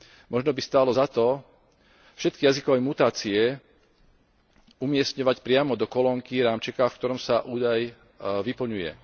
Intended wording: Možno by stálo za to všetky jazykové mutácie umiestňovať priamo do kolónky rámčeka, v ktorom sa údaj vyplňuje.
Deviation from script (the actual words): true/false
false